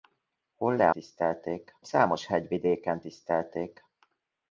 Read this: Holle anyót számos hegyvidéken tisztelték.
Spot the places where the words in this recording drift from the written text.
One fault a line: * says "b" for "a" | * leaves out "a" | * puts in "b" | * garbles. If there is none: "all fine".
* says "tisztelték" for "anyót"